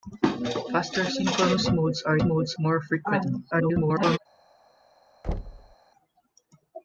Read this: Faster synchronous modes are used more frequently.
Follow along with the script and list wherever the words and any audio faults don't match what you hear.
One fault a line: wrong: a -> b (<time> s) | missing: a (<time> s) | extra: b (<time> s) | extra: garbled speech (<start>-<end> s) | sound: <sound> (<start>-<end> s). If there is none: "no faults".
wrong: used -> modes (2.2 s)
extra: garbled speech (3.5-4.2 s)
sound: thud (5.2-5.8 s)